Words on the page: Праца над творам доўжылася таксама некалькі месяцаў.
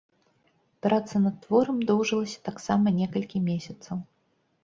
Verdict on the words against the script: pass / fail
pass